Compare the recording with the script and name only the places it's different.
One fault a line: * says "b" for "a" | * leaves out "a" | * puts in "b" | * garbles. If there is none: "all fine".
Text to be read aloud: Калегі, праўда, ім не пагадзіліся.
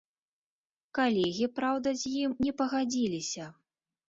* puts in "з"